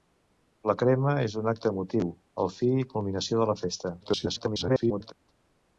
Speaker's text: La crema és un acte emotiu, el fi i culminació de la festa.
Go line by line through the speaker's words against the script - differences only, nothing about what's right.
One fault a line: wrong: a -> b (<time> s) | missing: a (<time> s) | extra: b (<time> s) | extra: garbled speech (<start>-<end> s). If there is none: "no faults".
extra: garbled speech (4.0-5.1 s)